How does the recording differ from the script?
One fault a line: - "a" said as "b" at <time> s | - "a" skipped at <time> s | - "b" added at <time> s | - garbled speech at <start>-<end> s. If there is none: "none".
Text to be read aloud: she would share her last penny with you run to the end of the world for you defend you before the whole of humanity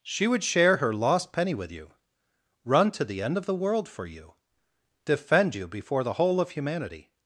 - "last" said as "lost" at 0.9 s